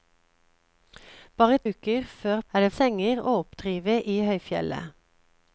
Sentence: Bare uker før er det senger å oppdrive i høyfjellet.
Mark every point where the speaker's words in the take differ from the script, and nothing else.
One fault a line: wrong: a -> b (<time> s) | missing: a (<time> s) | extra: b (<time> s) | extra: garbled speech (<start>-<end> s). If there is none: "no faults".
no faults